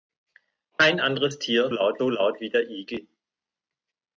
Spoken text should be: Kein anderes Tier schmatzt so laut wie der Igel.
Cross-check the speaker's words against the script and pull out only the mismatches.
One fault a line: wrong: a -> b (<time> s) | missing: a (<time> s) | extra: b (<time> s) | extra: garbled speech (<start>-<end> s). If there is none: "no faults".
wrong: schmatzt -> laut (1.7 s)